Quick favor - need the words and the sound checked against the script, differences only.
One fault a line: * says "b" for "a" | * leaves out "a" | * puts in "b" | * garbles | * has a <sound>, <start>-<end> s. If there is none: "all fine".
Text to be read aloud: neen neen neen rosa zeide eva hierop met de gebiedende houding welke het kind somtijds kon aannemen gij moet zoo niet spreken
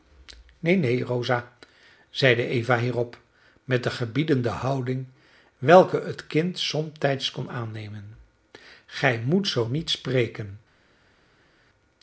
* leaves out "neen"